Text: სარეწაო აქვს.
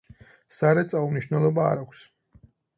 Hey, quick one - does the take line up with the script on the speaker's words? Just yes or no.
no